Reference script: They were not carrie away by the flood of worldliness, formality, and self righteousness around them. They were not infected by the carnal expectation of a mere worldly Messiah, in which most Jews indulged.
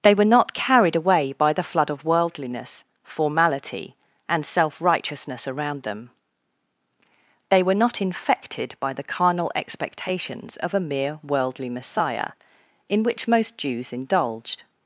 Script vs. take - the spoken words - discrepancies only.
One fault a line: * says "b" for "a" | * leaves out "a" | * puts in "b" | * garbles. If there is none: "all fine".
* says "carried" for "carrie"
* says "expectations" for "expectation"